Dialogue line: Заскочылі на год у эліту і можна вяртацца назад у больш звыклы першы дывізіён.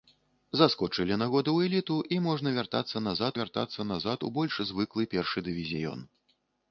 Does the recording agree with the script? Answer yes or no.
no